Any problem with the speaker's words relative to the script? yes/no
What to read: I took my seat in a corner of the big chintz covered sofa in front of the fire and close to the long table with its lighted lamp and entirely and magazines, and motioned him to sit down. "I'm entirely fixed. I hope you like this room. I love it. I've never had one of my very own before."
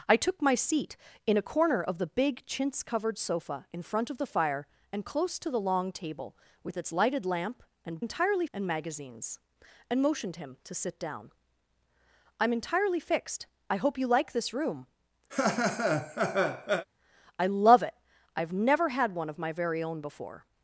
no